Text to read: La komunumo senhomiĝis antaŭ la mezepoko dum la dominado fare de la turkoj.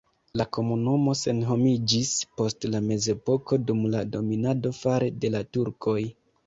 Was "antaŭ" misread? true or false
true